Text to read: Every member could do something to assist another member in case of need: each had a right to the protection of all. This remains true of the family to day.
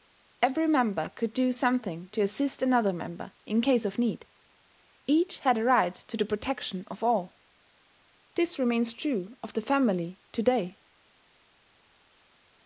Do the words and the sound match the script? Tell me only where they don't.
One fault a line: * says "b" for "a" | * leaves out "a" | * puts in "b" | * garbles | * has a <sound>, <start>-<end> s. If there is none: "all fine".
all fine